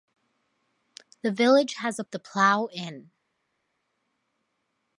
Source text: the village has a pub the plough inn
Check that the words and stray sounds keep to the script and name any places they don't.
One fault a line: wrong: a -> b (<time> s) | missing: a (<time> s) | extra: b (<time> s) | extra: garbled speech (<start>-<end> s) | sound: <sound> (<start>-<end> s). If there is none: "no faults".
missing: pub (2.0 s)